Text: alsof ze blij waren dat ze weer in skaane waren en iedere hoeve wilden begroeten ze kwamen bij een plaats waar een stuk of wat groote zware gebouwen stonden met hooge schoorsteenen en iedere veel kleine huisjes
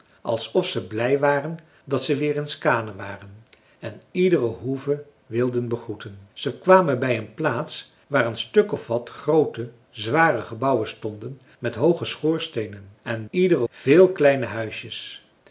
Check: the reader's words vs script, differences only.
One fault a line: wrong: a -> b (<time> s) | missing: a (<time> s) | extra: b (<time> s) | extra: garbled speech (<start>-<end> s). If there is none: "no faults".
no faults